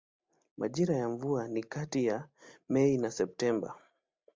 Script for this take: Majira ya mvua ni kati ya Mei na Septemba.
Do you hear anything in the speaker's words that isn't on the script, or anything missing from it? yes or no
no